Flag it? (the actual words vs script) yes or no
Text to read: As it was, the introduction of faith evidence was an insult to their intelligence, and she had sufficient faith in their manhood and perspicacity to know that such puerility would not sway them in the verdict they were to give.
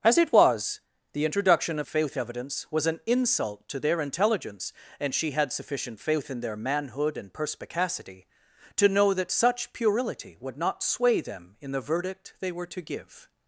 no